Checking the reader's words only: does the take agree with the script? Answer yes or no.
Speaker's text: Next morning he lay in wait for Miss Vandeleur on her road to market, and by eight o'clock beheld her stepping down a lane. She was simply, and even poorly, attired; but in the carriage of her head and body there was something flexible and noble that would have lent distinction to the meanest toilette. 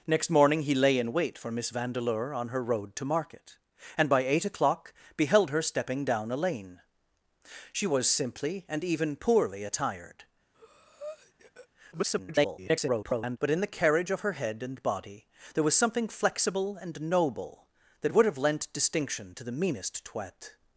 no